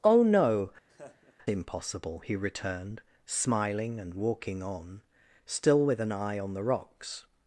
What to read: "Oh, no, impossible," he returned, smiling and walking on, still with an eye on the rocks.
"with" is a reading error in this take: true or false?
false